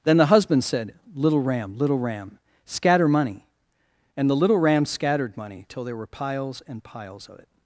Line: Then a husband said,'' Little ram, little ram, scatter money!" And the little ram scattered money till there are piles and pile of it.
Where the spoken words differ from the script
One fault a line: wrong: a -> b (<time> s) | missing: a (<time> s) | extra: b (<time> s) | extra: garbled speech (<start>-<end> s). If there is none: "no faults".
wrong: a -> the (0.2 s)
wrong: are -> were (6.0 s)
wrong: pile -> piles (6.8 s)